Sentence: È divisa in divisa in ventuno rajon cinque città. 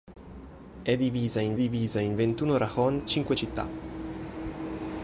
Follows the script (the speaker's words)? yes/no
yes